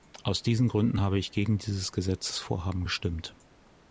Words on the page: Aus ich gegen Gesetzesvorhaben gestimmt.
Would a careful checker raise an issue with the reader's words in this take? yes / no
yes